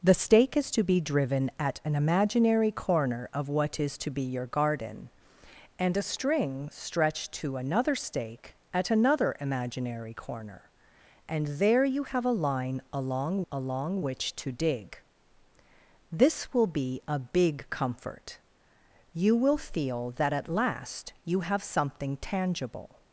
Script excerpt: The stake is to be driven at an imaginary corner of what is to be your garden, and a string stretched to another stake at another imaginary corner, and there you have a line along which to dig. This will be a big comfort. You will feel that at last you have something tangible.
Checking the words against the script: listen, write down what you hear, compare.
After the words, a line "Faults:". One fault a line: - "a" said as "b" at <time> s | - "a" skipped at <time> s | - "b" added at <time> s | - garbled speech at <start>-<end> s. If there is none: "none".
The stake is to be driven at an imaginary corner of what is to be your garden, and a string stretched to another stake at another imaginary corner, and there you have a line along along which to dig. This will be a big comfort. You will feel that at last you have something tangible.
Faults:
- "along" added at 13.5 s